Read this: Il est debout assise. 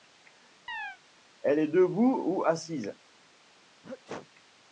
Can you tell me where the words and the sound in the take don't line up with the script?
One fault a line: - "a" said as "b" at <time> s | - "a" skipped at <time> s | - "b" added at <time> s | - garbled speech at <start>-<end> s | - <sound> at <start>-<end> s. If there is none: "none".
- chirp at 0.7-1.0 s
- "Il" said as "Elle" at 1.4 s
- "ou" added at 2.2 s
- sneeze at 3.8-4.3 s